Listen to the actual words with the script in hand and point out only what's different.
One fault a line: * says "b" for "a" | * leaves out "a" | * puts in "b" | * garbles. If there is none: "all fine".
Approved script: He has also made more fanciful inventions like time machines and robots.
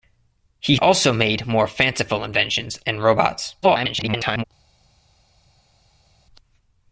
* leaves out "has"
* leaves out "like time machines"
* garbles